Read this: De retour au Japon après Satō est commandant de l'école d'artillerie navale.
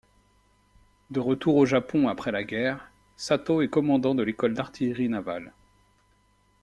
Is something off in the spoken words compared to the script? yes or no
yes